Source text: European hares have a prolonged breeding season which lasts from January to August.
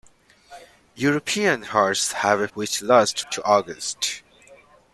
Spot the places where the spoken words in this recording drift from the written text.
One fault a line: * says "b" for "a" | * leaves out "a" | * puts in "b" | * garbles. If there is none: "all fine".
* leaves out "prolonged breeding season"
* leaves out "from January"